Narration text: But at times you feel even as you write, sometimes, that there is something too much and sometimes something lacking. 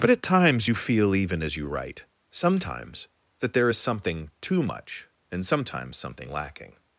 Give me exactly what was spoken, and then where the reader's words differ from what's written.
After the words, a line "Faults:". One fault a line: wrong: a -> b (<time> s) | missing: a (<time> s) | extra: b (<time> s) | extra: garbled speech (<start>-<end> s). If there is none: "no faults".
But at times you feel even as you write, sometimes, that there is something too much and sometimes something lacking.
Faults:
no faults